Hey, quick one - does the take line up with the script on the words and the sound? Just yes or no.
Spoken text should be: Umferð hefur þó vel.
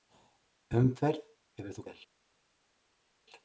yes